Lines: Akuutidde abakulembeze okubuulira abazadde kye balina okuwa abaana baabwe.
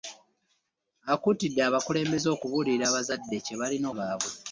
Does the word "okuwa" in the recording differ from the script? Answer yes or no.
yes